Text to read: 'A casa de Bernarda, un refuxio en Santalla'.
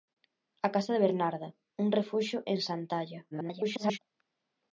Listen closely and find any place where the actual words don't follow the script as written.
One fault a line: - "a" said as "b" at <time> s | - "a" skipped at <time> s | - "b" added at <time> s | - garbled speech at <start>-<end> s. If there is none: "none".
- garbled speech at 3.3-4.0 s